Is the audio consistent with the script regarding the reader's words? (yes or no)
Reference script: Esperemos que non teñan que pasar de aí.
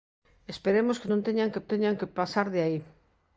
no